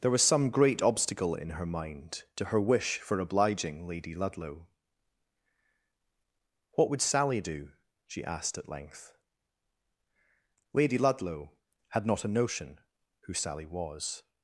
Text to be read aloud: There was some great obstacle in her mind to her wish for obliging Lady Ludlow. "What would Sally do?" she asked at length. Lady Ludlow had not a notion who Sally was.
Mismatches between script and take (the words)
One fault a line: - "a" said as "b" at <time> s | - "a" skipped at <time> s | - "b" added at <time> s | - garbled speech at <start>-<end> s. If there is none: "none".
none